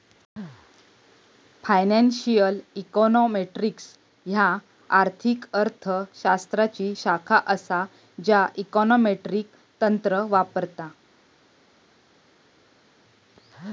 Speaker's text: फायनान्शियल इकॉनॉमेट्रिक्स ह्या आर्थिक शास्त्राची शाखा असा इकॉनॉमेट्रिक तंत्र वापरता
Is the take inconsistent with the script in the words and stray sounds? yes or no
yes